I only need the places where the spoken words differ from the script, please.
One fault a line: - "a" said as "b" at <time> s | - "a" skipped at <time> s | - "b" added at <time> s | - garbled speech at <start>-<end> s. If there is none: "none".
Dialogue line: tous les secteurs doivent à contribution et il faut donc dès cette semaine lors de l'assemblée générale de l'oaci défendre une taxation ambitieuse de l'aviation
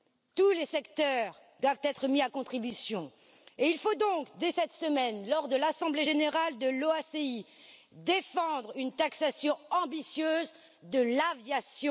- "être mis" added at 1.8 s